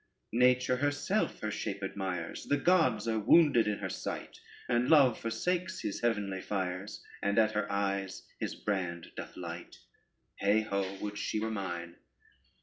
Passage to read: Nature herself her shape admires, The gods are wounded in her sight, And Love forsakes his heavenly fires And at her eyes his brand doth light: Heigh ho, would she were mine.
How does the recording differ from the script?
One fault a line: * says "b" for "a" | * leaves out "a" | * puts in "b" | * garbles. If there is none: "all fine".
all fine